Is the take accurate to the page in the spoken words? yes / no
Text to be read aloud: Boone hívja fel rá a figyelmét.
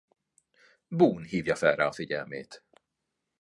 yes